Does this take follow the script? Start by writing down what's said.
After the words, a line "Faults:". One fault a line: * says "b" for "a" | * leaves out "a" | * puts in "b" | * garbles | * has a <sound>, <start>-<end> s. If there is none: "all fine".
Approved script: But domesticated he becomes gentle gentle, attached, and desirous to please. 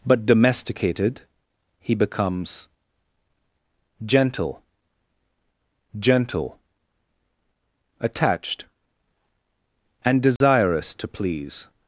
But domesticated he becomes gentle gentle, attached, and desirous to please.
Faults:
* has a dropout, 10.4-10.4 s